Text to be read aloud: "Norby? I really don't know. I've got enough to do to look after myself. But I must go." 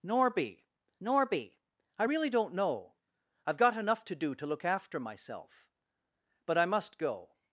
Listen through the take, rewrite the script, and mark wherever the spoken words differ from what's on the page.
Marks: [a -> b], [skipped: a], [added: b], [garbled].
"Norby? [added: norby] I really don't know. I've got enough to do to look after myself. But I must go."